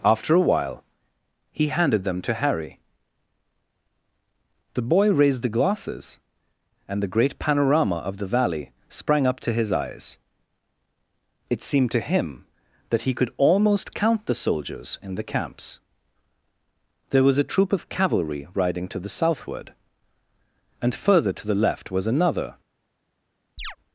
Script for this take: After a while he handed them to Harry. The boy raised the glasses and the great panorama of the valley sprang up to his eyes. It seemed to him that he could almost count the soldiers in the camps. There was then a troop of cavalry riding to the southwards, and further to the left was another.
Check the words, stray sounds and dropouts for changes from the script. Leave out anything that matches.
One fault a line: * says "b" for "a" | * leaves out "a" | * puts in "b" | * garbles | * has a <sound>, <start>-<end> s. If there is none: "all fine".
* leaves out "then"
* says "southward" for "southwards"
* has a chirp, 23.6-23.8 s